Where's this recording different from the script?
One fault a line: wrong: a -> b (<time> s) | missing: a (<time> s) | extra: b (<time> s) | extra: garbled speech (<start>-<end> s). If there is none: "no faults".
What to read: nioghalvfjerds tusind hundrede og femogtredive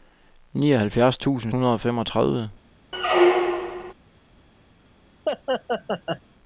no faults